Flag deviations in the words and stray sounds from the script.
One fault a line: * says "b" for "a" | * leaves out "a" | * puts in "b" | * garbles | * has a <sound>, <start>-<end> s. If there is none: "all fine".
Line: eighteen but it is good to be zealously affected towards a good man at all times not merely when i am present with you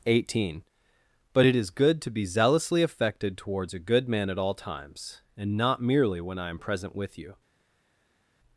* puts in "and"